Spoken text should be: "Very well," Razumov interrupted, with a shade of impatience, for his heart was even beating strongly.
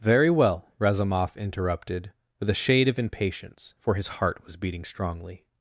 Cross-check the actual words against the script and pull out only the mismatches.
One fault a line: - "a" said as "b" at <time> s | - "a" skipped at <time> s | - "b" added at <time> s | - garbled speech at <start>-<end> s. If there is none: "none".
- "even" skipped at 4.6 s